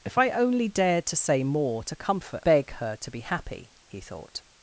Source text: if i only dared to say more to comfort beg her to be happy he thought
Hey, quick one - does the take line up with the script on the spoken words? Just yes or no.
yes